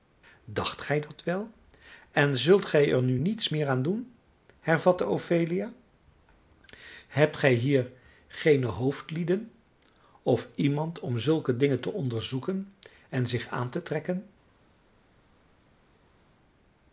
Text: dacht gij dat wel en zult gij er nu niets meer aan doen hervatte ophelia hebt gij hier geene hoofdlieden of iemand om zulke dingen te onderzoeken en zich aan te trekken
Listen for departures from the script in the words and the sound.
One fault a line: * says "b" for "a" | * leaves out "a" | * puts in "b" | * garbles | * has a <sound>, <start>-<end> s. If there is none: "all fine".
all fine